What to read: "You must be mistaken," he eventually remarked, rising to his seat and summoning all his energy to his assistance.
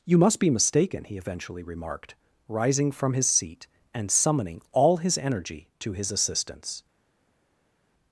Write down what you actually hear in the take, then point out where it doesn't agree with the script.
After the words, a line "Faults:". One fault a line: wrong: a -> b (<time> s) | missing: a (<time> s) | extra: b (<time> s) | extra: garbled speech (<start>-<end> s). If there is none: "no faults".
"You must be mistaken," he eventually remarked, rising from his seat and summoning all his energy to his assistance.
Faults:
wrong: to -> from (2.9 s)